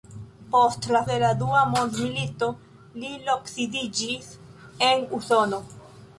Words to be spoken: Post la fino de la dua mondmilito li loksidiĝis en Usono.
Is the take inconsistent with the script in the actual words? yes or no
yes